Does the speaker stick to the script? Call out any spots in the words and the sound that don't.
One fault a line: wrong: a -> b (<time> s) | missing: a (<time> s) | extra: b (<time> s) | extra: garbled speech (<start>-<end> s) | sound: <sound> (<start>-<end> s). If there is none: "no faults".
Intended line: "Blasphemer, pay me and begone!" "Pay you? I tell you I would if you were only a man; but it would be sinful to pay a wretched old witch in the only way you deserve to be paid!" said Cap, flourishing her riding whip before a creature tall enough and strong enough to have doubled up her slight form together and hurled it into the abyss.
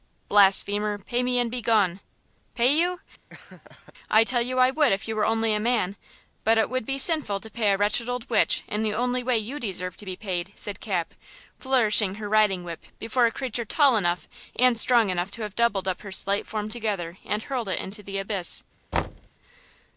sound: laugh (3.3-3.9 s)
sound: thud (18.9-19.3 s)